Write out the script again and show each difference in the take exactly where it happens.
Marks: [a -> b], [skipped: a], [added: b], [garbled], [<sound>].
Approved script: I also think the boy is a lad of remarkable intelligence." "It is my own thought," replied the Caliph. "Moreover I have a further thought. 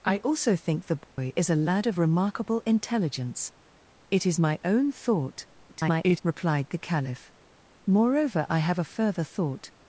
I also think the boy [dropout] is a lad of remarkable intelligence." "It is my own thought," [garbled] replied the Caliph. "Moreover I have a further thought.